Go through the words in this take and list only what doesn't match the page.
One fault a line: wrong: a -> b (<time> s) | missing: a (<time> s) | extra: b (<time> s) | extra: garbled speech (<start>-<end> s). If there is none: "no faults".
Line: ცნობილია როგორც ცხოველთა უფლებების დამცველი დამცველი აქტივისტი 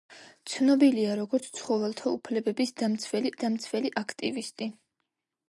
no faults